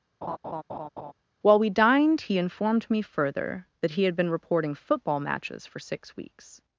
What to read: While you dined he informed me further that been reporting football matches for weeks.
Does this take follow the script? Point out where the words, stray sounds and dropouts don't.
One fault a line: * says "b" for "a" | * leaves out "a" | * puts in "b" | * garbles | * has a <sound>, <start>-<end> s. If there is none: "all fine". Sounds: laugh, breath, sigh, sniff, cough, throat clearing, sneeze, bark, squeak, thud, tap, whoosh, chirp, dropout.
* has a laugh, 0.2-1.1 s
* says "we" for "you"
* puts in "he had"
* puts in "six"